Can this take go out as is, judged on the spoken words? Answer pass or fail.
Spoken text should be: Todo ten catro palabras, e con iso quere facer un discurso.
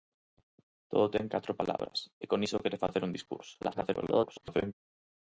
fail